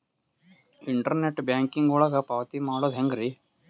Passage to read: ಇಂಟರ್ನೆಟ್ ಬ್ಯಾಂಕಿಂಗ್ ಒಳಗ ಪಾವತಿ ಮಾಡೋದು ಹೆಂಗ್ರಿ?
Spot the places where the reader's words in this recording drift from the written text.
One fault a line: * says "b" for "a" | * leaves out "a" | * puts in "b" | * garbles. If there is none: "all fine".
all fine